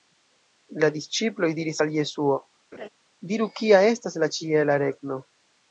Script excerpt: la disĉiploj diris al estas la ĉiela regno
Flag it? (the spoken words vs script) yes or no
yes